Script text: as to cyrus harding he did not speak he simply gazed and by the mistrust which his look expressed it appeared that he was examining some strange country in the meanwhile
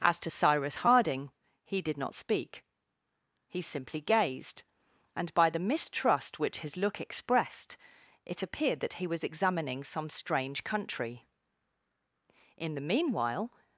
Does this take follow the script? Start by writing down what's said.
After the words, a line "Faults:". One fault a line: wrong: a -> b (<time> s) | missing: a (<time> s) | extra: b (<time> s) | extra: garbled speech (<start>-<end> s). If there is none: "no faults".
as to cyrus harding he did not speak he simply gazed and by the mistrust which his look expressed it appeared that he was examining some strange country in the meanwhile
Faults:
no faults